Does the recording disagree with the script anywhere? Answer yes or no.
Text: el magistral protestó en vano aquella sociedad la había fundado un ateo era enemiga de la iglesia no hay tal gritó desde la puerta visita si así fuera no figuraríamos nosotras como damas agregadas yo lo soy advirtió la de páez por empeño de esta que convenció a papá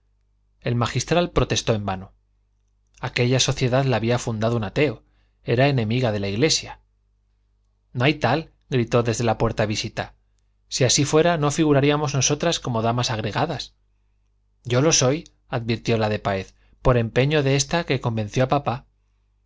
no